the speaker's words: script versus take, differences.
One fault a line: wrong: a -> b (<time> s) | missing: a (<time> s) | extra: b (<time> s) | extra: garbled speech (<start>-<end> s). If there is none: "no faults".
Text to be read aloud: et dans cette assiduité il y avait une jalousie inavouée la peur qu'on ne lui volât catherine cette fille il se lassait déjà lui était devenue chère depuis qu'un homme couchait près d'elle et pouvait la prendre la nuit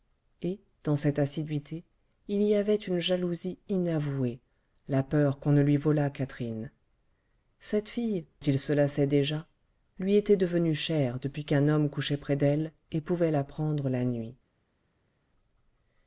no faults